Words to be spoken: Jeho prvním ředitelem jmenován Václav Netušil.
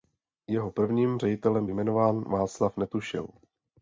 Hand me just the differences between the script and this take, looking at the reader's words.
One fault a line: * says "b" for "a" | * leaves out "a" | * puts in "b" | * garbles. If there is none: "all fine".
all fine